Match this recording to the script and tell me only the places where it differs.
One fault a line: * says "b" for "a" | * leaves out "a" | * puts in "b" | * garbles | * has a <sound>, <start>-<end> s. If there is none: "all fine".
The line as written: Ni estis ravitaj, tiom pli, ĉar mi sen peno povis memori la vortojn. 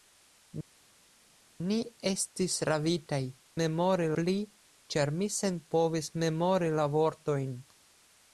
* says "memori" for "tiom"
* leaves out "peno"